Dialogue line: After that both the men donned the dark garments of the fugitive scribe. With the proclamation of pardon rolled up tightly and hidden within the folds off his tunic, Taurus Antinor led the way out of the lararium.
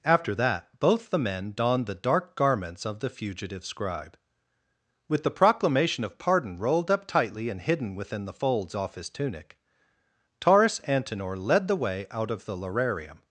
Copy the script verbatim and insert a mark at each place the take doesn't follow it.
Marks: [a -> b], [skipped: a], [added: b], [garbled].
After that both the men donned the dark garments of the fugitive scribe. With the proclamation of pardon rolled up tightly and hidden within the folds off his tunic, Taurus Antinor led the way out of the lararium.